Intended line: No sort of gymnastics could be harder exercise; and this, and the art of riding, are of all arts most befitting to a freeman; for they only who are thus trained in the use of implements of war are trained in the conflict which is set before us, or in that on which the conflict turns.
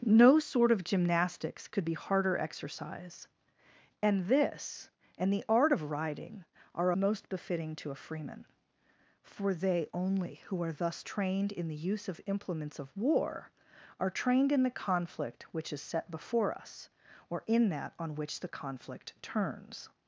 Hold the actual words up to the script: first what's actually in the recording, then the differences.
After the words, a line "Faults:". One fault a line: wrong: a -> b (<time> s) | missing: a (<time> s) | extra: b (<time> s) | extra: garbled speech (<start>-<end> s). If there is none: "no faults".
No sort of gymnastics could be harder exercise; and this, and the art of riding, are most befitting to a freeman; for they only who are thus trained in the use of implements of war are trained in the conflict which is set before us, or in that on which the conflict turns.
Faults:
missing: of all arts (6.9 s)